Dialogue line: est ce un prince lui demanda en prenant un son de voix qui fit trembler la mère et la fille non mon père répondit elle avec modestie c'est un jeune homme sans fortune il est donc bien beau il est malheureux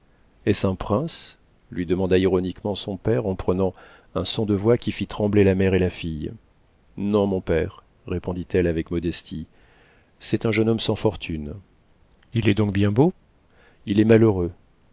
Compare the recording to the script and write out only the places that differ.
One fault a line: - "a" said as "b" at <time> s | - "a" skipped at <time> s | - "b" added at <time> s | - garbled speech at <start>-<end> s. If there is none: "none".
- "ironiquement son père" added at 2.2 s